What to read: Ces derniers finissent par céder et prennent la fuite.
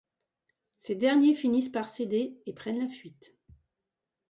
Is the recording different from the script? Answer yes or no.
no